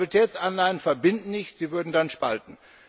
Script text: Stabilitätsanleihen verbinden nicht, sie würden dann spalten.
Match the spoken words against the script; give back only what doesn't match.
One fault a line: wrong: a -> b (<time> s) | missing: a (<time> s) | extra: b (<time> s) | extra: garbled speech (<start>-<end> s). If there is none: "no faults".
no faults